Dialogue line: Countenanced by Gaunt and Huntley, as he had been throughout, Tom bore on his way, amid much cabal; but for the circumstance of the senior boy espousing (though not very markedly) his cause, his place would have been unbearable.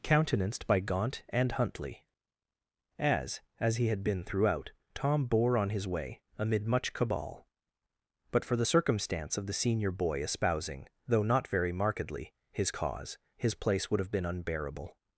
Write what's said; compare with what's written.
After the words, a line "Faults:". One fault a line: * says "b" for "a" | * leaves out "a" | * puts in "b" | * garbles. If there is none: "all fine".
Countenanced by Gaunt and Huntley, as as he had been throughout, Tom bore on his way, amid much cabal; but for the circumstance of the senior boy espousing (though not very markedly) his cause, his place would have been unbearable.
Faults:
* puts in "as"